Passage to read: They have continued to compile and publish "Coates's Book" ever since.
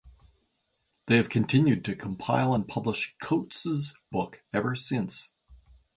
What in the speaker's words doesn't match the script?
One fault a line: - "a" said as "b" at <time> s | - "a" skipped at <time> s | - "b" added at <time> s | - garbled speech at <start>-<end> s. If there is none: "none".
none